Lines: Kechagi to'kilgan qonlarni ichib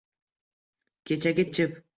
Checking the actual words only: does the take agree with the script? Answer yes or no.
no